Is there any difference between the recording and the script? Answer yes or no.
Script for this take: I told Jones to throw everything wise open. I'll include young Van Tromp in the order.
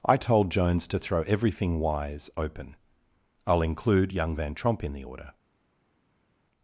no